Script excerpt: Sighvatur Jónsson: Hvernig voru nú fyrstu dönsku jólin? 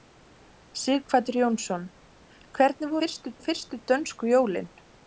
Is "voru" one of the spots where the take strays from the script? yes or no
yes